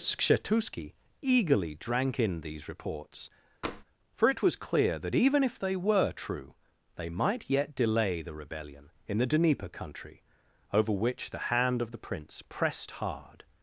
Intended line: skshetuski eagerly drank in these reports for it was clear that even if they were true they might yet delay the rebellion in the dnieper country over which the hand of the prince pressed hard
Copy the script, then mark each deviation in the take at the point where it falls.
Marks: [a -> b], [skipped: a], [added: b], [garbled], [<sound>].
skshetuski eagerly drank in these reports [tap] for it was clear that even if they were true they might yet delay the rebellion in the dnieper country over which the hand of the prince pressed hard